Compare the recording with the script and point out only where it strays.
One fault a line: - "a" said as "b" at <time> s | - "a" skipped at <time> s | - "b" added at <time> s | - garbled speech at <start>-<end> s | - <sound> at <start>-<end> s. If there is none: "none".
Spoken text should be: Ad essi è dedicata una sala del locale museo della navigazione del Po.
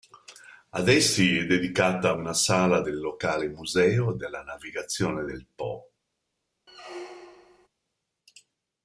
- squeak at 6.7-7.7 s